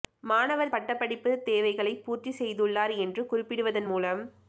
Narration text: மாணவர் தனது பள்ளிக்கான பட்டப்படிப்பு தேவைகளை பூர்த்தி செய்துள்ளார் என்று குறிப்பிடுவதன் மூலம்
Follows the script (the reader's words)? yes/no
no